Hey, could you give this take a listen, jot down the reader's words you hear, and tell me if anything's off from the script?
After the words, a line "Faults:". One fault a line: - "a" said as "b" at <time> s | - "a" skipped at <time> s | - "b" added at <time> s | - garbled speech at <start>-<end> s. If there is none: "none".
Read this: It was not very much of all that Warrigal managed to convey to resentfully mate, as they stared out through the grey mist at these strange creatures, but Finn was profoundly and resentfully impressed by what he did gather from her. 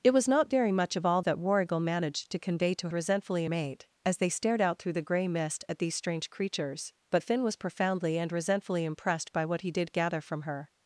It was not very much of all that Warrigal managed to convey to resentfully mate, as they stared out through the grey mist at these strange creatures, but Finn was profoundly and resentfully impressed by what he did gather from her.
Faults:
none